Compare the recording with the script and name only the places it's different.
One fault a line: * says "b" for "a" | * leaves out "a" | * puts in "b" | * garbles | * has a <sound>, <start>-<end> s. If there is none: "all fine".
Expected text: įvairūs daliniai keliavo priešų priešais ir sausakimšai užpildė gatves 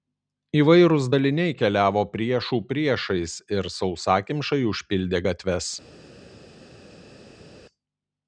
all fine